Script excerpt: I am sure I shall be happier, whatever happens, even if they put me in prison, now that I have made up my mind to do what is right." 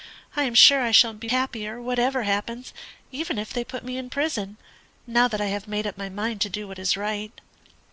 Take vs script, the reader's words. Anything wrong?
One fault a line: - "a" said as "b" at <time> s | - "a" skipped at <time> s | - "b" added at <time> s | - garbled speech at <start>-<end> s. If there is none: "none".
none